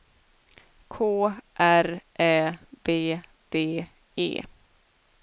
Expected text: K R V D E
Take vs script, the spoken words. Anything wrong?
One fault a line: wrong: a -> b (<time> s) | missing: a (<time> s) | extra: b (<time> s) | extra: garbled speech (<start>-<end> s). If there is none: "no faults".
extra: Ä (2.2 s)